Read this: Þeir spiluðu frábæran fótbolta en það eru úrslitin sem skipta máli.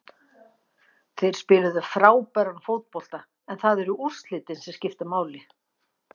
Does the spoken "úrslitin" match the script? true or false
true